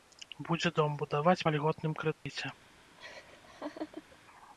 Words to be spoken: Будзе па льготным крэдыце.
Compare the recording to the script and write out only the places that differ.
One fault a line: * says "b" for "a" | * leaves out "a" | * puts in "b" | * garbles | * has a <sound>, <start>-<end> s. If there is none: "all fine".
* puts in "дом будаваць"
* has a dropout, 2.1-2.3 s
* has a laugh, 3.0-4.2 s